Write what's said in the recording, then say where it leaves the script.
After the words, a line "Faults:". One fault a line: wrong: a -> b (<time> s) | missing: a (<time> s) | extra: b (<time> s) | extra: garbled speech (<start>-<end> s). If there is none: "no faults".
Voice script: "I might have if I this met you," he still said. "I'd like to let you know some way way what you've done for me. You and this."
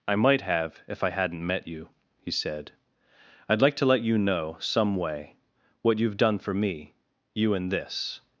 "I might have if I hadn't met you," he said. "I'd like to let you know some way what you've done for me. You and this."
Faults:
wrong: this -> hadn't (1.1 s)
missing: still (2.3 s)
missing: way (5.3 s)